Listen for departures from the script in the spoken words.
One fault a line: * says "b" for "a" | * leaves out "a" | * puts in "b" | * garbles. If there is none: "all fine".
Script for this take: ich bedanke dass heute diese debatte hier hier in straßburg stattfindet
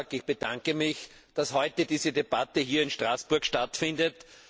* puts in "mich"
* leaves out "hier"